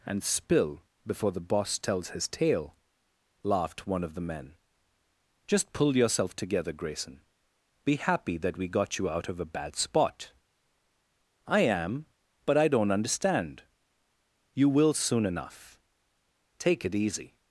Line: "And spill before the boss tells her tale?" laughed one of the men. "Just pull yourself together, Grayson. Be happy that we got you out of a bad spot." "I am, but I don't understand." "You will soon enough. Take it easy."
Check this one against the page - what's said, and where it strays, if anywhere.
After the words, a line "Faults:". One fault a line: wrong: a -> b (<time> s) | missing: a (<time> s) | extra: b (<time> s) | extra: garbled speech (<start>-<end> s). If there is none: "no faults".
"And spill before the boss tells his tale?" laughed one of the men. "Just pull yourself together, Grayson. Be happy that we got you out of a bad spot." "I am, but I don't understand." "You will soon enough. Take it easy."
Faults:
wrong: her -> his (2.1 s)